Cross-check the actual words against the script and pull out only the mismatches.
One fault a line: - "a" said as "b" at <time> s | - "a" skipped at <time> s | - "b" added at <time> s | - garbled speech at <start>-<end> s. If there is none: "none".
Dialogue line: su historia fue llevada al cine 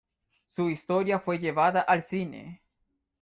none